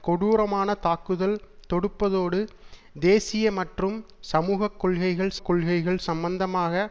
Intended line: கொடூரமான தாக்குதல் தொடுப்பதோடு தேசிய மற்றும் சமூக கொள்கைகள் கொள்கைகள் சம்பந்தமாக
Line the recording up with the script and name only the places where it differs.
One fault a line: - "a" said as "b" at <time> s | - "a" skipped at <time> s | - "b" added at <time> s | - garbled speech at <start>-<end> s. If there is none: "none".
none